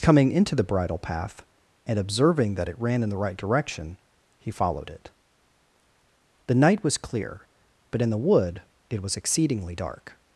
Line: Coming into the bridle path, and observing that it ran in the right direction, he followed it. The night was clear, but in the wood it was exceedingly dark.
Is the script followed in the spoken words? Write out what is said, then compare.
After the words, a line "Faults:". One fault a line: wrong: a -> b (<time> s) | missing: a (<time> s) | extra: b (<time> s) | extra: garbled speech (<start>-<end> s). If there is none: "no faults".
Coming into the bridle path, and observing that it ran in the right direction, he followed it. The night was clear, but in the wood it was exceedingly dark.
Faults:
no faults